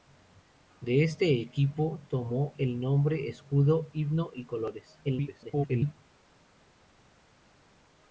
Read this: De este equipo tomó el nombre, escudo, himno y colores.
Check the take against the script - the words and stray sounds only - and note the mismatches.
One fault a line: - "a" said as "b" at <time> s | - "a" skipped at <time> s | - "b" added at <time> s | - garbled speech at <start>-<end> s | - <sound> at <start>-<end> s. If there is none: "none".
- garbled speech at 5.0-6.0 s